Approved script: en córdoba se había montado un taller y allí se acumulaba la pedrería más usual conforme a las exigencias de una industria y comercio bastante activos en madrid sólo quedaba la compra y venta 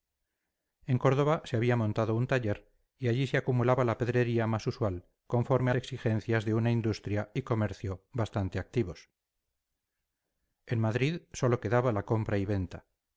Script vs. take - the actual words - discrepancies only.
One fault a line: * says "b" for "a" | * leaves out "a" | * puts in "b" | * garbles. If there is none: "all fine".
* leaves out "las"